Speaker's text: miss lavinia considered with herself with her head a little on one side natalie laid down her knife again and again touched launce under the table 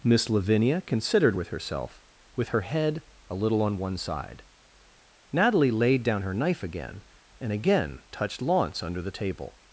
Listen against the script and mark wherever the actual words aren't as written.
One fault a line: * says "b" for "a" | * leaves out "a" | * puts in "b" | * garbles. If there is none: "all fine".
all fine